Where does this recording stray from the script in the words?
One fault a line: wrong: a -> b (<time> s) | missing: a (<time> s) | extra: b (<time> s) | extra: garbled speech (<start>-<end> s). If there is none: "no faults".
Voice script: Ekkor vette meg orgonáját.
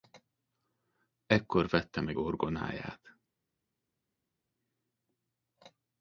no faults